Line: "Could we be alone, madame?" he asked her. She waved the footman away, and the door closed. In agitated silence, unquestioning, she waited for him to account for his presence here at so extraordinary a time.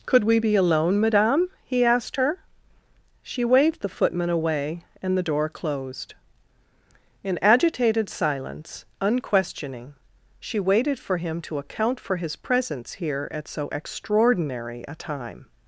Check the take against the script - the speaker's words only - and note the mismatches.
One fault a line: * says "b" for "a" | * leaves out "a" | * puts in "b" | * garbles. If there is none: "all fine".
all fine